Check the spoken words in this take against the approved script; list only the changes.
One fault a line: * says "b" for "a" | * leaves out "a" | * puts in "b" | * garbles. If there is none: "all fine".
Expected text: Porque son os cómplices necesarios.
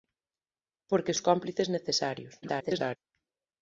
* leaves out "son"
* garbles